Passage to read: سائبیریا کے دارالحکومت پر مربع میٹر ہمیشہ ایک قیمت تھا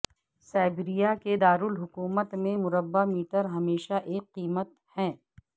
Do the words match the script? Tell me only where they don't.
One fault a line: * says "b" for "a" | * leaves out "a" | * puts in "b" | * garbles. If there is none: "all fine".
* says "میں" for "پر"
* says "ہے" for "تھا"